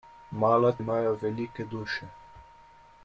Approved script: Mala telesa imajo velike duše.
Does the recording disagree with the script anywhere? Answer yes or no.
yes